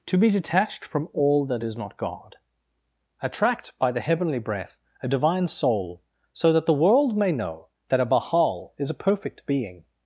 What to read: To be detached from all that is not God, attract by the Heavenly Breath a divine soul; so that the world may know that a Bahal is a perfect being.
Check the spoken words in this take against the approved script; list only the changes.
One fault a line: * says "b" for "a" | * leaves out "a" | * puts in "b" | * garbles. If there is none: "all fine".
all fine